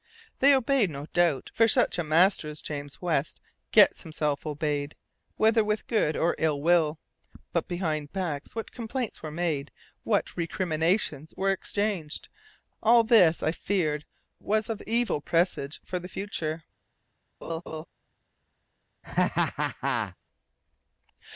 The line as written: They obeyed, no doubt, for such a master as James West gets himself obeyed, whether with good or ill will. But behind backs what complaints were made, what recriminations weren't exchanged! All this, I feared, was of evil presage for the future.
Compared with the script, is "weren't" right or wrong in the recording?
wrong